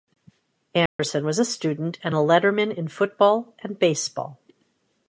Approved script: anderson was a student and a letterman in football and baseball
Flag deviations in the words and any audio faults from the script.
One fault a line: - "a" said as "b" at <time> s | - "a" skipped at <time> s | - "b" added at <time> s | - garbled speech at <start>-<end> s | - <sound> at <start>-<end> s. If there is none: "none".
- dropout at 0.9-1.0 s